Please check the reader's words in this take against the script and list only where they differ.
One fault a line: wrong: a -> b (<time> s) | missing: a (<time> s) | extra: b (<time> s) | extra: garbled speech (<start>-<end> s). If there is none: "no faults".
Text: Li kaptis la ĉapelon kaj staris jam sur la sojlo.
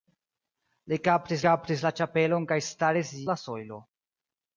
extra: kaptis (1.4 s)
missing: jam sur (3.1 s)